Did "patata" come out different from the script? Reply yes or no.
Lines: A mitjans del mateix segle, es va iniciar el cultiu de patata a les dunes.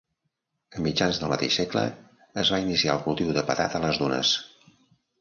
no